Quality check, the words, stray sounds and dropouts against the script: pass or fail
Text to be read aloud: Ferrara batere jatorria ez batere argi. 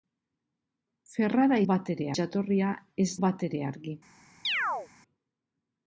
fail